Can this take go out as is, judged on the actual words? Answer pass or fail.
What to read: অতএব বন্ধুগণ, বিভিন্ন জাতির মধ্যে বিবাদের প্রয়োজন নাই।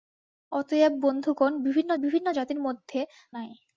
fail